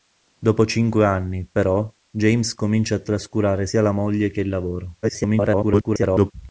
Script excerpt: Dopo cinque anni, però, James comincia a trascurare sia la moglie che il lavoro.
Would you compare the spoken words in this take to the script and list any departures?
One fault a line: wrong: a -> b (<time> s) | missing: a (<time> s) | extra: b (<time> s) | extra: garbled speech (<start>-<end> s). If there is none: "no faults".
extra: garbled speech (5.0-6.3 s)